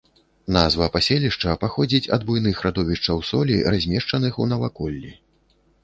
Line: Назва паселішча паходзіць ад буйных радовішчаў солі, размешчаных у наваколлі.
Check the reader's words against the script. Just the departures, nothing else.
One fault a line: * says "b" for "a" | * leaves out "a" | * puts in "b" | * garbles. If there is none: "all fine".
all fine